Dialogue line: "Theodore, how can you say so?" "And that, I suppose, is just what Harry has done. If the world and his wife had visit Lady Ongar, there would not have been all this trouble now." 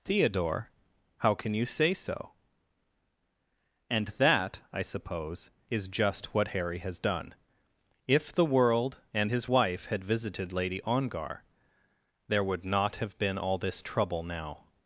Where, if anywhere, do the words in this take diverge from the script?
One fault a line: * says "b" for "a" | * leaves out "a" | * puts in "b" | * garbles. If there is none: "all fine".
* says "visited" for "visit"